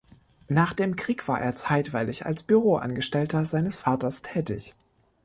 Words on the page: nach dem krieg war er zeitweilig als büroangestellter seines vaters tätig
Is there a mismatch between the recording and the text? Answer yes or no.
no